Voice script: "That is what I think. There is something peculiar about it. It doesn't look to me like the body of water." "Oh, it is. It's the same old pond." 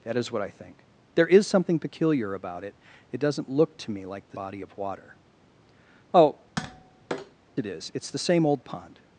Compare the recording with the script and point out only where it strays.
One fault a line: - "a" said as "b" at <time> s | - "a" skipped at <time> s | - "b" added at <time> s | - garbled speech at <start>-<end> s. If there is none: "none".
none